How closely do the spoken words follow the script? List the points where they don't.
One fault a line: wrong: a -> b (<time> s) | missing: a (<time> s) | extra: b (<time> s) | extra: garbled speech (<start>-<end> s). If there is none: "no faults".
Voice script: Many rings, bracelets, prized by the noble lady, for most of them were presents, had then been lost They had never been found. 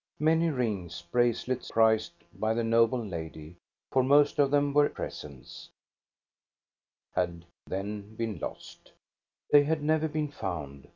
no faults